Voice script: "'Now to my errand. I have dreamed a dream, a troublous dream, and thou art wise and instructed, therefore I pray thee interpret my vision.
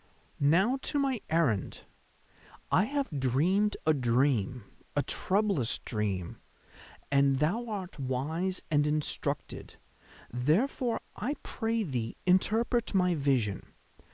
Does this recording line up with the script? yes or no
yes